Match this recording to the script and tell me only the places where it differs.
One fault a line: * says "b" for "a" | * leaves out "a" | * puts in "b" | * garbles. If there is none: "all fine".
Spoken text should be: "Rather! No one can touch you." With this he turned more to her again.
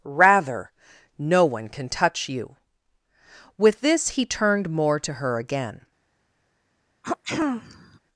all fine